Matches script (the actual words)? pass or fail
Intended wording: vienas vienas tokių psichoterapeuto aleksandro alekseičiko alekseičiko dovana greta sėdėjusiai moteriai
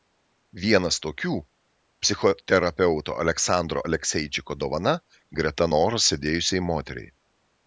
fail